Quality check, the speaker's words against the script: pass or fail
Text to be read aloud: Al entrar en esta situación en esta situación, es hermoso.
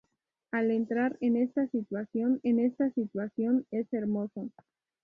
pass